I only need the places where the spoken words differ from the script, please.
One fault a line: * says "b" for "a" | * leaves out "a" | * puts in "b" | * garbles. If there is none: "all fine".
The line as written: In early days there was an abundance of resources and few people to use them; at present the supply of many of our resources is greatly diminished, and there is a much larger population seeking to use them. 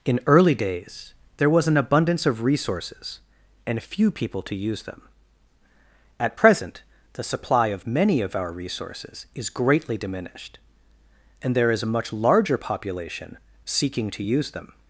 all fine